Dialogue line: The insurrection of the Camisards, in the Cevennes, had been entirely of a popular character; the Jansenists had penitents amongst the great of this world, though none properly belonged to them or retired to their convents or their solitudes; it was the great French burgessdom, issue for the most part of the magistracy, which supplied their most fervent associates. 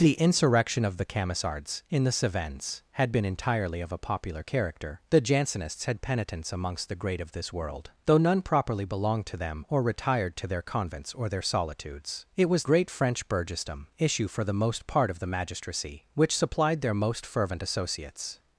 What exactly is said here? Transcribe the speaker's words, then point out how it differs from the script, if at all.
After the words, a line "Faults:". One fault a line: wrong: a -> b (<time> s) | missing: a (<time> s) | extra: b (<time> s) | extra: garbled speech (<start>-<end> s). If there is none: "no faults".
The insurrection of the Camisards, in the Cevennes, had been entirely of a popular character; the Jansenists had penitents amongst the great of this world, though none properly belonged to them or retired to their convents or their solitudes; it was great French burgessdom, issue for the most part of the magistracy, which supplied their most fervent associates.
Faults:
missing: the (12.6 s)